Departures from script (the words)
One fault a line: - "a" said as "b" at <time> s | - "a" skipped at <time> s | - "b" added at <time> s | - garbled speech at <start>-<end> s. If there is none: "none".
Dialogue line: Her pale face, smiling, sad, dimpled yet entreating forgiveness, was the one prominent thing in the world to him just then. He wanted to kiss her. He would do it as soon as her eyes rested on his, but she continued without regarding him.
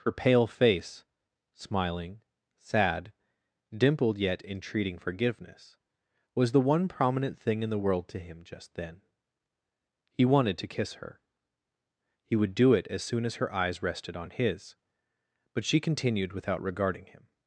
none